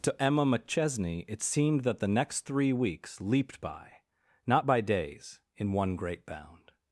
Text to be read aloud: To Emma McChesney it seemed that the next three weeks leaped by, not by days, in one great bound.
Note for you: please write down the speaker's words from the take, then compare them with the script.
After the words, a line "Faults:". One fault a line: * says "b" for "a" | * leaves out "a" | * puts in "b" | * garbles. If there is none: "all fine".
To Emma McChesney it seemed that the next three weeks leaped by, not by days, in one great bound.
Faults:
all fine